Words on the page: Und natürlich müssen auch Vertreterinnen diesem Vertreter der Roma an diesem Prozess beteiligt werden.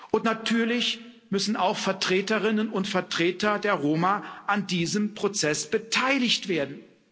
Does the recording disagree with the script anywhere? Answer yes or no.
yes